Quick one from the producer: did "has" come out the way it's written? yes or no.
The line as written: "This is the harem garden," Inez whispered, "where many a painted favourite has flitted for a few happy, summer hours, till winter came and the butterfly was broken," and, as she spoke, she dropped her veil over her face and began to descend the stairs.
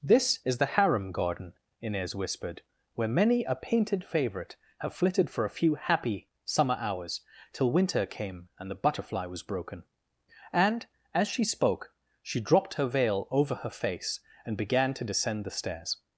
no